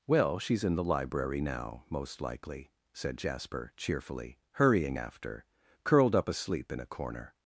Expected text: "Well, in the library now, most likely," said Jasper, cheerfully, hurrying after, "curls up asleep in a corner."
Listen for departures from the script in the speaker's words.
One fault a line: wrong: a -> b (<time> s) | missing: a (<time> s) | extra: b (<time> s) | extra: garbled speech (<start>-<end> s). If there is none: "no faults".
extra: she's (0.4 s)
wrong: curls -> curled (5.8 s)